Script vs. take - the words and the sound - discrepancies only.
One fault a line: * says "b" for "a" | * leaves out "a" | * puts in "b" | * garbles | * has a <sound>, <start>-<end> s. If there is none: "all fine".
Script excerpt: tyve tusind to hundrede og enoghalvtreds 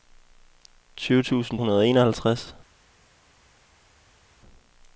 * leaves out "to"